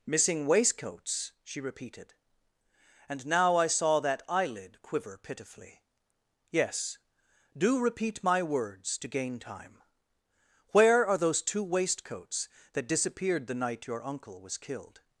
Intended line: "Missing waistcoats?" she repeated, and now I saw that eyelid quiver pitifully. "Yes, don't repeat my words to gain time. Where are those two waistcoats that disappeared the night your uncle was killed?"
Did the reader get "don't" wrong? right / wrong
wrong